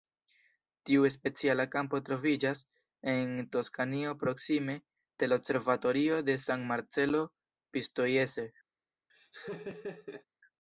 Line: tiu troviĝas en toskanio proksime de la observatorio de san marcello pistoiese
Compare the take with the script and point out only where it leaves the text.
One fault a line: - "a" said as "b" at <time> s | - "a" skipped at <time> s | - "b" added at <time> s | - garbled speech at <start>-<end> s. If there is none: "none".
- "speciala kampo" added at 1.1 s